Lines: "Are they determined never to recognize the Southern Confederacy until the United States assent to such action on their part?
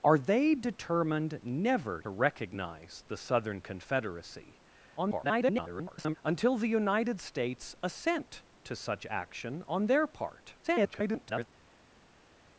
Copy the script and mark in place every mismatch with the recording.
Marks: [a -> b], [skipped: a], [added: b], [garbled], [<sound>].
"Are they determined never [skipped: to] recognize the Southern Confederacy [garbled] until the United States assent to such action on their part? [garbled]